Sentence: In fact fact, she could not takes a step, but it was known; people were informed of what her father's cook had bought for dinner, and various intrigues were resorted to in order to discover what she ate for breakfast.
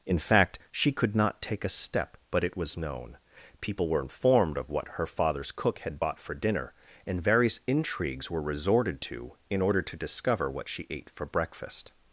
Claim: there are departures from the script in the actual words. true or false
true